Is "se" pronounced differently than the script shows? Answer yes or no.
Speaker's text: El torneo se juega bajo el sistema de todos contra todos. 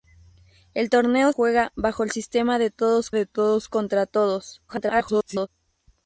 yes